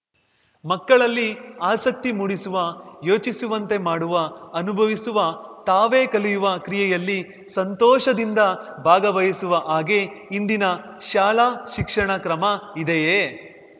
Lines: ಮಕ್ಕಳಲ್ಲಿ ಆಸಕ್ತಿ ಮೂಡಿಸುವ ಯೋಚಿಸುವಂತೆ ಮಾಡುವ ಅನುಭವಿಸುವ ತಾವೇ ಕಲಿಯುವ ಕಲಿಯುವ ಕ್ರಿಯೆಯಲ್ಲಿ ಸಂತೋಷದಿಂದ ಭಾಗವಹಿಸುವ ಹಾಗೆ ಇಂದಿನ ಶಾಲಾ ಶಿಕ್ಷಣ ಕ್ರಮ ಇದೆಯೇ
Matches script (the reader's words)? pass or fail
fail